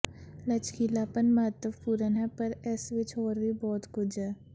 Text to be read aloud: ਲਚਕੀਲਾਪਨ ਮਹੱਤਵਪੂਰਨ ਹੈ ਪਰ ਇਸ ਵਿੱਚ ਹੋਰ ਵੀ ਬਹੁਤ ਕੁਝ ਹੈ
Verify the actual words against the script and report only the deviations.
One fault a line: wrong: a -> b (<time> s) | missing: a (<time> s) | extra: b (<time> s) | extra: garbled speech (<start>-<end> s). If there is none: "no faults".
no faults